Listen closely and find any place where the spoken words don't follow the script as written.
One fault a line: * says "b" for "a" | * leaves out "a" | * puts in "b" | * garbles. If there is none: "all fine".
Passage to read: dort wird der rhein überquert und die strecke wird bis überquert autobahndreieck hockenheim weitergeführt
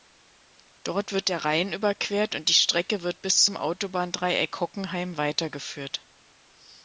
* says "zum" for "überquert"